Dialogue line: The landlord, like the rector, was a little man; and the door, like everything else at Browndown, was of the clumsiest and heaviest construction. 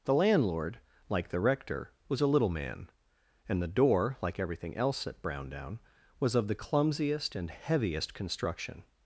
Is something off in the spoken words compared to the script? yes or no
no